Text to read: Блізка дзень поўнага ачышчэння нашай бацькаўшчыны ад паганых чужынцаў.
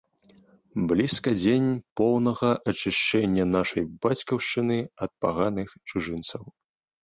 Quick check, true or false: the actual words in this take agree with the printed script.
true